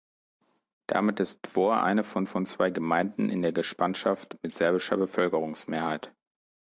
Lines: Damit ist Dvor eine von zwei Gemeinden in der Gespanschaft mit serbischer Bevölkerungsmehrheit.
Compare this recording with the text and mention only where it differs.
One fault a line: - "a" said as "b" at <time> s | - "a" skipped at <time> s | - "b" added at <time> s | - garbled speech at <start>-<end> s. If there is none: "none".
- "von" added at 2.2 s